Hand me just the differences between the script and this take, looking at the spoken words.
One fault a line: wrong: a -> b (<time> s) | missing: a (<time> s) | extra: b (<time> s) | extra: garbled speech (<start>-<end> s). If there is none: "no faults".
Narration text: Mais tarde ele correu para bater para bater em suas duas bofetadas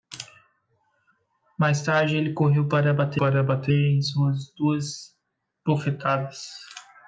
no faults